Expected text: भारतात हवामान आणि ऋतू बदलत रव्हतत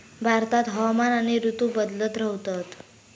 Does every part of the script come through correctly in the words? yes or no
yes